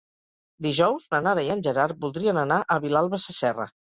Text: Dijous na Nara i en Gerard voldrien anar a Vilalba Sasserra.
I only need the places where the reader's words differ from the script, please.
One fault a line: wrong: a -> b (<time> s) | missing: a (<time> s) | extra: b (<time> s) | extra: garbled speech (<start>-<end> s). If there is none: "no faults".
no faults